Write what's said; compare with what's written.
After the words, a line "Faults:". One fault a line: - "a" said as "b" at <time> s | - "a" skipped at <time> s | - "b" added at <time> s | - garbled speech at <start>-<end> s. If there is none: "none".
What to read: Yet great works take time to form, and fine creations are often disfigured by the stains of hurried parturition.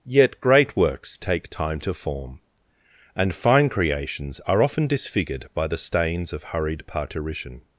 Yet great works take time to form, and fine creations are often disfigured by the stains of hurried parturition.
Faults:
none